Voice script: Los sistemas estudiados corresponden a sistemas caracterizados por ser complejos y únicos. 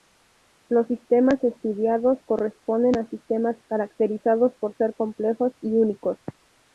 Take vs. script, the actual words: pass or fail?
pass